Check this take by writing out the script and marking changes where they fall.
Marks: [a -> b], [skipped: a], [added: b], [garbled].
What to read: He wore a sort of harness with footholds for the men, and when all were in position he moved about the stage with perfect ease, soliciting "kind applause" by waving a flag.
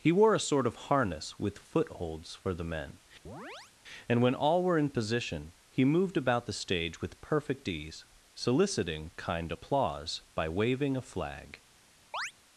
He wore a sort of harness with footholds for the men, and when all were in position he moved about the stage with perfect ease, soliciting "kind applause" by waving a flag.